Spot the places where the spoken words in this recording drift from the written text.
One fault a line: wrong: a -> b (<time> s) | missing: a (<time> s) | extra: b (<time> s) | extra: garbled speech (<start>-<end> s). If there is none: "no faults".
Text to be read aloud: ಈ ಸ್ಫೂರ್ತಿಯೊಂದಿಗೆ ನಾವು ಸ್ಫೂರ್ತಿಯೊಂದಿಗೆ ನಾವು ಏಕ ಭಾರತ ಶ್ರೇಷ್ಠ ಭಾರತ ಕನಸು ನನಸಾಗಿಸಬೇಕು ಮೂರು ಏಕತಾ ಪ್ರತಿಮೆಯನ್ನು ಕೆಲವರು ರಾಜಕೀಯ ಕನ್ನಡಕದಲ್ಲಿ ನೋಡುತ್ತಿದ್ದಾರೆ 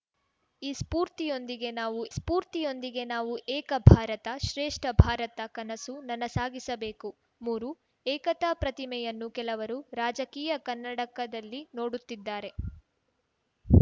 no faults